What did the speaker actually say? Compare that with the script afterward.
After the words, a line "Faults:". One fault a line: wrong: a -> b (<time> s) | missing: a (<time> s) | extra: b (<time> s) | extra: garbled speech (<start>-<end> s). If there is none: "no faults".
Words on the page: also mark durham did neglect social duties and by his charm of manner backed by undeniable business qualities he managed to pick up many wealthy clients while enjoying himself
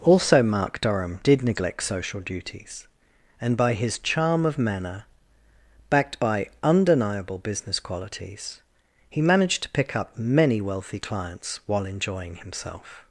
also mark durham did neglect social duties and by his charm of manner backed by undeniable business qualities he managed to pick up many wealthy clients while enjoying himself
Faults:
no faults